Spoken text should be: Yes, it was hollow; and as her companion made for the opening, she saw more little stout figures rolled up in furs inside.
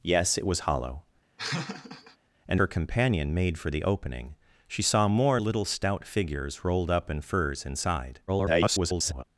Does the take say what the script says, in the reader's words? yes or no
no